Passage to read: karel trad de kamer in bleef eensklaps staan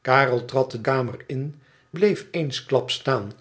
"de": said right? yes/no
yes